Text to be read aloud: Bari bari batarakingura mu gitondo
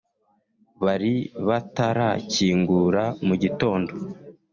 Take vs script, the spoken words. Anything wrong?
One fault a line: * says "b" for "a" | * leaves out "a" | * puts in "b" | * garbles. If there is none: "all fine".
* leaves out "bari"